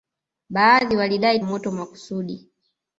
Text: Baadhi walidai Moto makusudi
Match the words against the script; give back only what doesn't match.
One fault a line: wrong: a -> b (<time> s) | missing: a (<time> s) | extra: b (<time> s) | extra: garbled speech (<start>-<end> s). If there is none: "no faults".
no faults